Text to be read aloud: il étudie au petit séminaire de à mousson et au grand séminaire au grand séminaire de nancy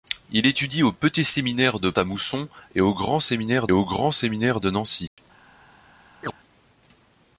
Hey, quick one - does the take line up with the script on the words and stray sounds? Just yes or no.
no